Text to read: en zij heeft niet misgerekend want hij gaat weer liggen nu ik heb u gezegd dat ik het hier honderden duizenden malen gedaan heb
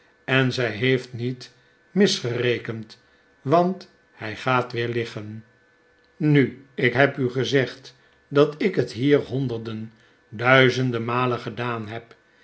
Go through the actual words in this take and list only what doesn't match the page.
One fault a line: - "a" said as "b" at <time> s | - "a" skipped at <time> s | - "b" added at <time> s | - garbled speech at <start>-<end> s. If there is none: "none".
none